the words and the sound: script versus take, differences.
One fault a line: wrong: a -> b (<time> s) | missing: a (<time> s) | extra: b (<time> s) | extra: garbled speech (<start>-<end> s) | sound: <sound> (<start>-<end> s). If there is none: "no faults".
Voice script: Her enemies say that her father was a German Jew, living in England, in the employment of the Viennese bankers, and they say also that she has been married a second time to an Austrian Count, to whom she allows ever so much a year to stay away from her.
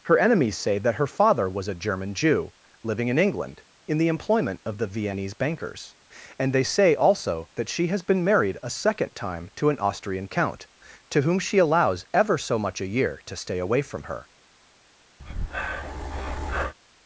sound: breath (15.2-16.7 s)